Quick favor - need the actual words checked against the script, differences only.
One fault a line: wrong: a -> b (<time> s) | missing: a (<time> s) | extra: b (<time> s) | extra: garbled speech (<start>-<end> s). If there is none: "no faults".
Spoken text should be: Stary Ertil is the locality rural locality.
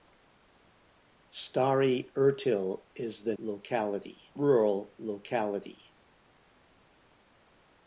no faults